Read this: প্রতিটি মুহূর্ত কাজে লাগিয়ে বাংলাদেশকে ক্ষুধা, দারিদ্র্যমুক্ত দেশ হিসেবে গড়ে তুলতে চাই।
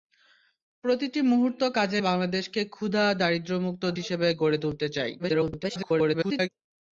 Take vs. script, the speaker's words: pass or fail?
fail